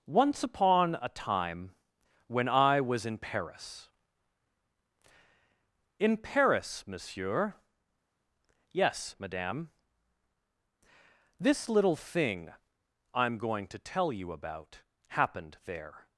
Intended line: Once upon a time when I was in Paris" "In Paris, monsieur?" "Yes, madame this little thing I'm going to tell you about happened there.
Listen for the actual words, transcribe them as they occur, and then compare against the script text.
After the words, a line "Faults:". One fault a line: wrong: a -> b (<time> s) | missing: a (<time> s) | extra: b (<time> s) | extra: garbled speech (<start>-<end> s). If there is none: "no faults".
Once upon a time when I was in Paris" "In Paris, monsieur?" "Yes, madame this little thing I'm going to tell you about happened there.
Faults:
no faults